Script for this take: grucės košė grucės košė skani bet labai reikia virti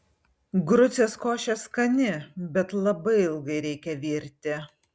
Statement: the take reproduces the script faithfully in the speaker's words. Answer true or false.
false